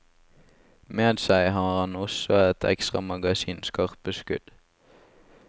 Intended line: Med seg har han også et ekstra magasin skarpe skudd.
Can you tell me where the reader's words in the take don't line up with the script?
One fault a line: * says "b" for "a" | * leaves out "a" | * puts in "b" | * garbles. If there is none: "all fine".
all fine